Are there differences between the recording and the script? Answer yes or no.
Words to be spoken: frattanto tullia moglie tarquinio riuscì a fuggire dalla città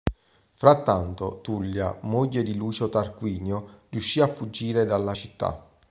yes